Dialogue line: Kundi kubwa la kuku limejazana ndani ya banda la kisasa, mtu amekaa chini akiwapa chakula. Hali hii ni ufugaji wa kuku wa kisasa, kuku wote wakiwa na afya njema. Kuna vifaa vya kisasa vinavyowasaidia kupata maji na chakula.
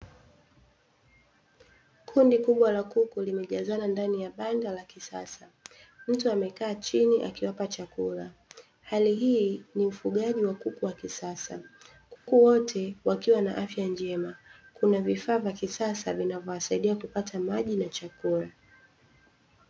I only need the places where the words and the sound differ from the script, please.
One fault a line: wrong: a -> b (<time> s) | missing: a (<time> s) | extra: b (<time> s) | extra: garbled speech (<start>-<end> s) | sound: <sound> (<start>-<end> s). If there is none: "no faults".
sound: dropout (12.2-12.3 s)